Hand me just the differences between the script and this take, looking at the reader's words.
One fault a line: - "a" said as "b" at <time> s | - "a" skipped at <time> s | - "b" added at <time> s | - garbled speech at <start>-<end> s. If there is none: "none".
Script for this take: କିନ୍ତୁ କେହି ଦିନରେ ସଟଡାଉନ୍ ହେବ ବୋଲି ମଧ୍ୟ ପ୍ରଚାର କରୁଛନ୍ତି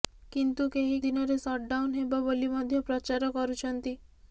none